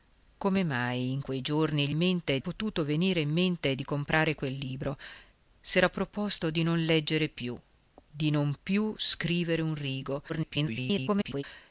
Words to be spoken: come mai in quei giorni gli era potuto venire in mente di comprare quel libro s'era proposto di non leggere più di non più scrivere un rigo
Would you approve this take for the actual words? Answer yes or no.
no